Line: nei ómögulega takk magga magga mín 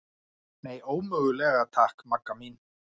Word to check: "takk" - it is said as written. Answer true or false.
true